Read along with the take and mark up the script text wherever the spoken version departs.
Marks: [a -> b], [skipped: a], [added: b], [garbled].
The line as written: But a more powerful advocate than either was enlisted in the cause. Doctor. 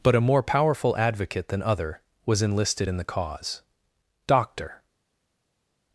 But a more powerful advocate than [either -> other] was enlisted in the cause. Doctor.